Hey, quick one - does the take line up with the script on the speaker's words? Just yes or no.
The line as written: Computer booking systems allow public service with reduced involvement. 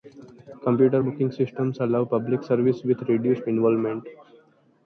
yes